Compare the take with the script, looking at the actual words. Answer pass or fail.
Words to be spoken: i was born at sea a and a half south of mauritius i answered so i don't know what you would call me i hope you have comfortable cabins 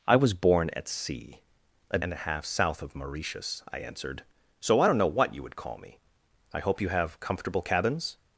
pass